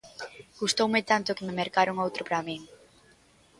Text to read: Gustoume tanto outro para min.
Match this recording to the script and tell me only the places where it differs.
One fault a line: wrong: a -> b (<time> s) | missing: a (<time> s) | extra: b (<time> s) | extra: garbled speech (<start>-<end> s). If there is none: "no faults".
extra: que me mercaron (1.3 s)